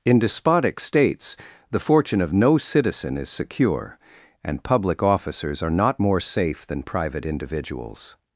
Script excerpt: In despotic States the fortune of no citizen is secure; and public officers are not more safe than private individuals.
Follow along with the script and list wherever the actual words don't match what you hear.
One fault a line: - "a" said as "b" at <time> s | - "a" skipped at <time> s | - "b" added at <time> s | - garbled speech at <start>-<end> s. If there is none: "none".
none